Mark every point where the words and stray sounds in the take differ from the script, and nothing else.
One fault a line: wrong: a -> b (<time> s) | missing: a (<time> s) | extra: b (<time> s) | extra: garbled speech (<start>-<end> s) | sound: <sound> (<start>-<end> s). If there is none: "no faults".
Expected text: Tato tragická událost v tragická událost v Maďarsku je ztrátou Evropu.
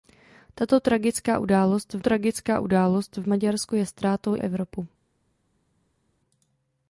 no faults